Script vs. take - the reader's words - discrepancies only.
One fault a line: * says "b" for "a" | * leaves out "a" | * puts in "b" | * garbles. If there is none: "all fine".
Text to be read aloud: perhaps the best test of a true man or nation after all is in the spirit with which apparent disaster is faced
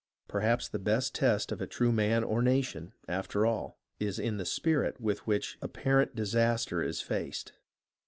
all fine